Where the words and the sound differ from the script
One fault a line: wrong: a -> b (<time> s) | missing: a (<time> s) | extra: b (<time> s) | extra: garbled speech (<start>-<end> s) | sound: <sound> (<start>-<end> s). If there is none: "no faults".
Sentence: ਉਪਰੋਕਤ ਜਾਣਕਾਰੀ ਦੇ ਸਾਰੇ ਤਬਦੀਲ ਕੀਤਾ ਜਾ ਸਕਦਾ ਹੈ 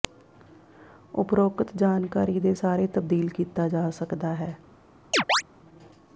sound: chirp (5.1-5.4 s)